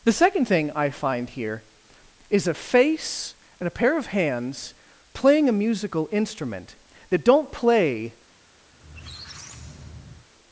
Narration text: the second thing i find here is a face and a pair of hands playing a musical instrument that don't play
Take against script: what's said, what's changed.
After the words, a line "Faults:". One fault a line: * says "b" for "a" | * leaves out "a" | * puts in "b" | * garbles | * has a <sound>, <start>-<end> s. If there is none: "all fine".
the second thing i find here is a face and a pair of hands playing a musical instrument that don't play
Faults:
* has a squeak, 8.7-10.3 s